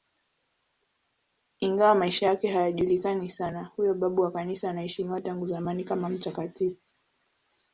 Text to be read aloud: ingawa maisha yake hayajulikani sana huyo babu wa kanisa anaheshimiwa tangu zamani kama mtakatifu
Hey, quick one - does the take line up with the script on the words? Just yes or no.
yes